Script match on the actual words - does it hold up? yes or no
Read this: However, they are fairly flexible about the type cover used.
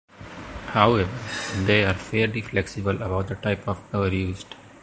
no